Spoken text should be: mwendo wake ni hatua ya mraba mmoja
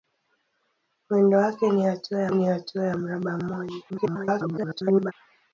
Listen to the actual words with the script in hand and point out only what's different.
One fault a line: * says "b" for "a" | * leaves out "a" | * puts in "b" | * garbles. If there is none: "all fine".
* puts in "ni hatua ya"
* garbles